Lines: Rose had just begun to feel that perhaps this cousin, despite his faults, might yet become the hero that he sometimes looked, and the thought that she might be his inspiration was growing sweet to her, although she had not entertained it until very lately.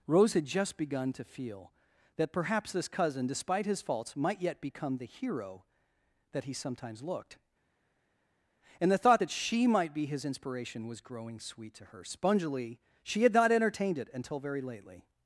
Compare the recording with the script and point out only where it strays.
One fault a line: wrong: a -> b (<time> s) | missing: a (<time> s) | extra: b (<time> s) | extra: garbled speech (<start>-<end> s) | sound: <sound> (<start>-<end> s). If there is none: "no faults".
wrong: although -> spongily (12.0 s)